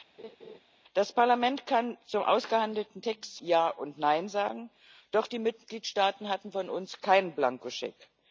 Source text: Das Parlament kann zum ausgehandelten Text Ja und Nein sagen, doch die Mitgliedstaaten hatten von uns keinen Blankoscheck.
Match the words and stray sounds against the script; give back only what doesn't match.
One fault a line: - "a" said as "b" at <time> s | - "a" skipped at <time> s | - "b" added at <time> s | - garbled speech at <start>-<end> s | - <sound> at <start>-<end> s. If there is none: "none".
- laugh at 0.2-0.6 s